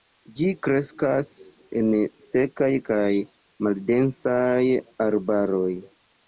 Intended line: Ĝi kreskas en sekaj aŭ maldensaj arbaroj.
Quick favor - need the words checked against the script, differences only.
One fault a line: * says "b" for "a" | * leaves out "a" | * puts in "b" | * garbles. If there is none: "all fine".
* says "kaj" for "aŭ"